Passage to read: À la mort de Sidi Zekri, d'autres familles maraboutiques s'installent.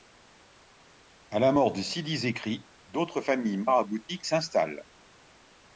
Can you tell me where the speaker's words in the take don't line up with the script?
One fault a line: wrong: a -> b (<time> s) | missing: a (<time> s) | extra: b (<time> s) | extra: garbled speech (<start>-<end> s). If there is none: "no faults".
no faults